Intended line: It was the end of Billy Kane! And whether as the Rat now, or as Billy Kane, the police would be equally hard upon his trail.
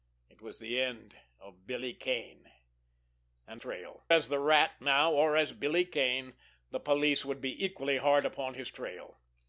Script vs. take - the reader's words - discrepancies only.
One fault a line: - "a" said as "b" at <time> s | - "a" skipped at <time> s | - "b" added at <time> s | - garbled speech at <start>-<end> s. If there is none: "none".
- "whether" said as "trail" at 3.5 s